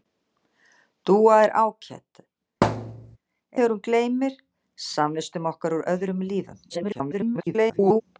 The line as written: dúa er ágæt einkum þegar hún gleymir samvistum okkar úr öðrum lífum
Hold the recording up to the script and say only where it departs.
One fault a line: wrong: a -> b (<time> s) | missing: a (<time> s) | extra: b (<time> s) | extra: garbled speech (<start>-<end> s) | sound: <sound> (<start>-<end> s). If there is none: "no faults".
missing: einkum (2.2 s)
sound: thud (2.6-3.2 s)
extra: garbled speech (6.7-8.0 s)